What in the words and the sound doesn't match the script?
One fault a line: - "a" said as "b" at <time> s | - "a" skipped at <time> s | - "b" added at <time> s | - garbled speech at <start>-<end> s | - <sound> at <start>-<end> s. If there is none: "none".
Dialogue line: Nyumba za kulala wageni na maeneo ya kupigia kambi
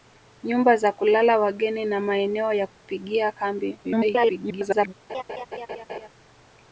- dropout at 2.7-2.8 s
- garbled speech at 3.8-4.9 s
- laugh at 5.1-6.1 s